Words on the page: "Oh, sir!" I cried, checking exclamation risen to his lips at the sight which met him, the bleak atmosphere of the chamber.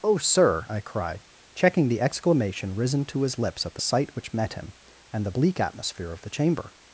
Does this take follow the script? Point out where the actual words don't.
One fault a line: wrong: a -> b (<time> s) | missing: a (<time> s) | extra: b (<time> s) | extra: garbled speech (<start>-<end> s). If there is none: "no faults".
extra: the (1.9 s)
extra: and (5.1 s)